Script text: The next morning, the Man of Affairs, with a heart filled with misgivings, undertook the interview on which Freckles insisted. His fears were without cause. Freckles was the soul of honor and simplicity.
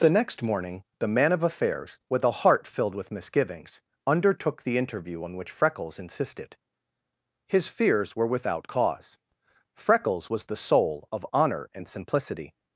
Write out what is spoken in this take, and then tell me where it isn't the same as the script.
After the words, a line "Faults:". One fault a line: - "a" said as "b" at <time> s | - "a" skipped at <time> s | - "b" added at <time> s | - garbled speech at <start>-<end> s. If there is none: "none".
The next morning, the Man of Affairs, with a heart filled with misgivings, undertook the interview on which Freckles insisted. His fears were without cause. Freckles was the soul of honor and simplicity.
Faults:
none